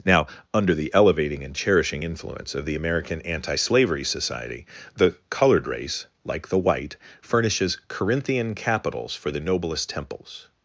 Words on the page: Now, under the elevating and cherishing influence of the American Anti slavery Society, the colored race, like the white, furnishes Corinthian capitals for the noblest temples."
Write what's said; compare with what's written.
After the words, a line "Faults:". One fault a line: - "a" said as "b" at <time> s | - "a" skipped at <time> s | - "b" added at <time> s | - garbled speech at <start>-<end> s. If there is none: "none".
Now, under the elevating and cherishing influence of the American Anti slavery Society, the colored race, like the white, furnishes Corinthian capitals for the noblest temples."
Faults:
none